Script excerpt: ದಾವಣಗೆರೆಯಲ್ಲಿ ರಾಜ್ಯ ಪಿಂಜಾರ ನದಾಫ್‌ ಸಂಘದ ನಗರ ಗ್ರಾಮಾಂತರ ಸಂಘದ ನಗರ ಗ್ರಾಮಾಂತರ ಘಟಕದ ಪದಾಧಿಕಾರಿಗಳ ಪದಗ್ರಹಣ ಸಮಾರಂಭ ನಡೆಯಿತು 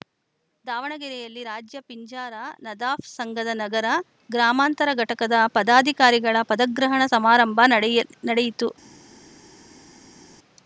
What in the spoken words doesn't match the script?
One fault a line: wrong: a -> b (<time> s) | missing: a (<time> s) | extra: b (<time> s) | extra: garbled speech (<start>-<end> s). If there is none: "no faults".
missing: ಸಂಘದ ನಗರ ಗ್ರಾಮಾಂತರ (4.9 s)
extra: ನಡೆಯ (7.7 s)